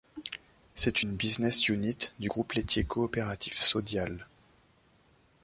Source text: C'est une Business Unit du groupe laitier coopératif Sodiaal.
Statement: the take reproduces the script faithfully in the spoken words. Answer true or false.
true